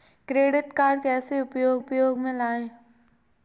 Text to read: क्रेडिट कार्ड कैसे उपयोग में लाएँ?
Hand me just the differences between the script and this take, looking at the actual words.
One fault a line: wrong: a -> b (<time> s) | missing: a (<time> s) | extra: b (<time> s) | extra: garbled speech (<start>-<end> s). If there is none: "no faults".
extra: उपयोग (1.8 s)